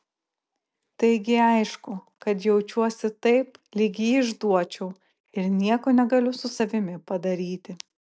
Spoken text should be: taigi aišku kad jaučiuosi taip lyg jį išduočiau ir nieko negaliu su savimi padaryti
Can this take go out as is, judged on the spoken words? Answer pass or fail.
pass